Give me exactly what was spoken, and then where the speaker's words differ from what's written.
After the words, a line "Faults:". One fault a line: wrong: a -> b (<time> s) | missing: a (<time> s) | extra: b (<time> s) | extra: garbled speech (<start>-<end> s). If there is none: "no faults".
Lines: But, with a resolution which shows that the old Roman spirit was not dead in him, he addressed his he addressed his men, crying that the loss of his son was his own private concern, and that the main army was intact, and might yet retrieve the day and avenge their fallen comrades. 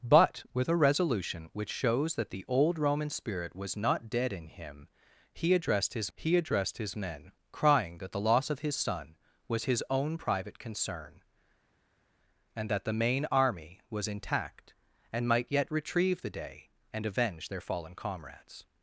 But, with a resolution which shows that the old Roman spirit was not dead in him, he addressed his he addressed his men, crying that the loss of his son was his own private concern, and that the main army was intact, and might yet retrieve the day and avenge their fallen comrades.
Faults:
no faults